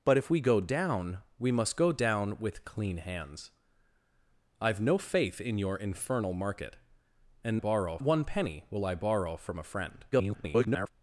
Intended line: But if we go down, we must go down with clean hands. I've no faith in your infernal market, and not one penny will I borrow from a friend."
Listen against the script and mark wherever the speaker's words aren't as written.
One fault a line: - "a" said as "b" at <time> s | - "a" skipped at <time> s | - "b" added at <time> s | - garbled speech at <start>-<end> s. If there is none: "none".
- "not" said as "borrow" at 7.6 s
- garbled speech at 10.1-10.9 s